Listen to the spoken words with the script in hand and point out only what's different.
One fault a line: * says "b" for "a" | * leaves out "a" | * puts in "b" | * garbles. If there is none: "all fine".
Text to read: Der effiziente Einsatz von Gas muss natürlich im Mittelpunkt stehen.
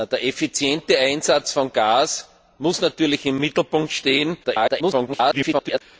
* garbles